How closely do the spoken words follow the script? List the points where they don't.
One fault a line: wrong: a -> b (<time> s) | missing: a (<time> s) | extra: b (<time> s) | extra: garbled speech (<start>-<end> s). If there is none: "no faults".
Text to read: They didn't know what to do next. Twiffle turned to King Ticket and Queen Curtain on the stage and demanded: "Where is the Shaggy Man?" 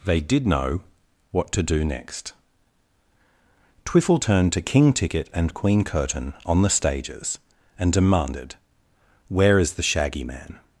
wrong: didn't -> did (0.2 s)
wrong: stage -> stages (6.7 s)